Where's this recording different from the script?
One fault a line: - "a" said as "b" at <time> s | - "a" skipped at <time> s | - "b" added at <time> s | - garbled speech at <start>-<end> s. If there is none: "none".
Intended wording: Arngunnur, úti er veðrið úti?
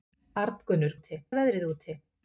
none